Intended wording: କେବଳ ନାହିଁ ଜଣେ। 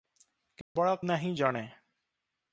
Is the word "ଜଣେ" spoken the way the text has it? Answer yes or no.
yes